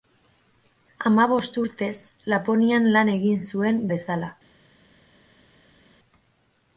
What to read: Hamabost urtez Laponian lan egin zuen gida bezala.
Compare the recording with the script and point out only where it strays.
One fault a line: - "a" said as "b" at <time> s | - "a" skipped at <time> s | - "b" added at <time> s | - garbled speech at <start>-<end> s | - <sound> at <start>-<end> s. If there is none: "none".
- "gida" skipped at 3.8 s